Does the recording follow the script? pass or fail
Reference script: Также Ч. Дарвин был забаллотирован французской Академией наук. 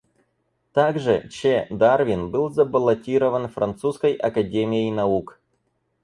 pass